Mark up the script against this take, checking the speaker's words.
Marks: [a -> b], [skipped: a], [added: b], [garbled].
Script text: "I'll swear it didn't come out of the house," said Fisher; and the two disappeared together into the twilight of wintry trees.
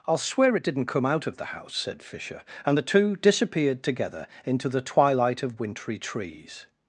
"I'll swear it didn't come out of the house," said Fisher; and the two disappeared together into the twilight of wintry trees.